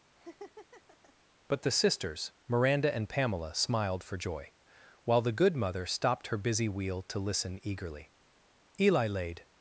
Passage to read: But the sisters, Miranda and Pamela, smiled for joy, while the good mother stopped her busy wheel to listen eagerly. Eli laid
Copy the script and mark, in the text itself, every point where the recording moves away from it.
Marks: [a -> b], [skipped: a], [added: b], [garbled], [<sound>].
[laugh] But the sisters, Miranda and Pamela, smiled for joy, while the good mother stopped her busy wheel to listen eagerly. Eli laid